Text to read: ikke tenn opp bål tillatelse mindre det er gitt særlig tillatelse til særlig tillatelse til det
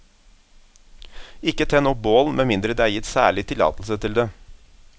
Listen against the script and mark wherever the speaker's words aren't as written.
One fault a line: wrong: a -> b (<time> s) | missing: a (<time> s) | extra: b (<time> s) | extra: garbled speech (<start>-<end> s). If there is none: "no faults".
wrong: tillatelse -> med (2.4 s)
missing: særlig tillatelse til (4.2 s)